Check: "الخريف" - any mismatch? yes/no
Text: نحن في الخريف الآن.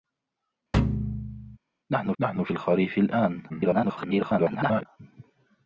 no